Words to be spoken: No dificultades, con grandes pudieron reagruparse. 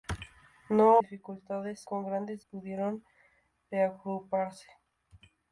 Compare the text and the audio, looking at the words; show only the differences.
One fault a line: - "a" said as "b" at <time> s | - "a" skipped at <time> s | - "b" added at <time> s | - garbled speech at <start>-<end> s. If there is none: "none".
none